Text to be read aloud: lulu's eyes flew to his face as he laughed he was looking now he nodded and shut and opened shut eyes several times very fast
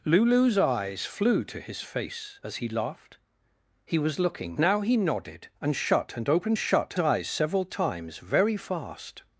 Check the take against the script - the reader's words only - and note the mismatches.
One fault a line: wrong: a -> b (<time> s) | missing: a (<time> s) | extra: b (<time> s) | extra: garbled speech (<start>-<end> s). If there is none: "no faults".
no faults